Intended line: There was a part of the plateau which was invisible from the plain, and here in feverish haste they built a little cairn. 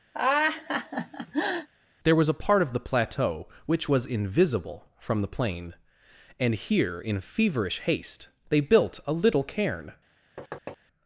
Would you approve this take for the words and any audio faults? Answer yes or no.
no